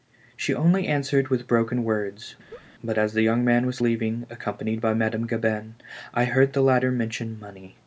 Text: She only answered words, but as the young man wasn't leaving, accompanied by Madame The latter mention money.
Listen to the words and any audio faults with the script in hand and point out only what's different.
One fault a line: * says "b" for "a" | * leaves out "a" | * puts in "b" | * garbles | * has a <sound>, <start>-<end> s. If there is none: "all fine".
* puts in "with broken"
* has a laugh, 2.5-2.7 s
* says "was" for "wasn't"
* puts in "Gabin I heard"